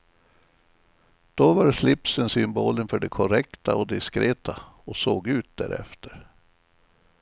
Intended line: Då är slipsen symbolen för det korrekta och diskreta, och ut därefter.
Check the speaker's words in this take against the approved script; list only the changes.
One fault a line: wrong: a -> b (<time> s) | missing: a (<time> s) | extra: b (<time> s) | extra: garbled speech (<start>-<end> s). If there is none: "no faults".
wrong: är -> var (1.5 s)
extra: såg (5.0 s)